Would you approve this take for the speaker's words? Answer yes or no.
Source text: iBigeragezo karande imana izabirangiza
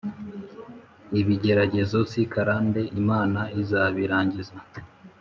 no